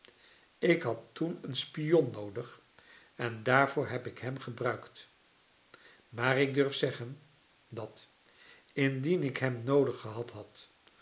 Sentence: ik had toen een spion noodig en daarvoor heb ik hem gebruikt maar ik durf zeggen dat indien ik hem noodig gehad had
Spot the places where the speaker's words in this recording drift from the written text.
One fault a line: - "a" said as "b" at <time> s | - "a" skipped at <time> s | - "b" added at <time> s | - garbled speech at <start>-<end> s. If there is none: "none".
none